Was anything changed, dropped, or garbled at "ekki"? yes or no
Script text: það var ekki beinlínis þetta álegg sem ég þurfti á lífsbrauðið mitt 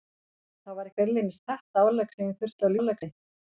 yes